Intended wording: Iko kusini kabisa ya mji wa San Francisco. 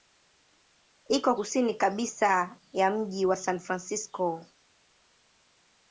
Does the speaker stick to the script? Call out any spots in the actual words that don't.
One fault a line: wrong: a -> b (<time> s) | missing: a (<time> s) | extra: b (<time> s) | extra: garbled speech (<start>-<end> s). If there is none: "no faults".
no faults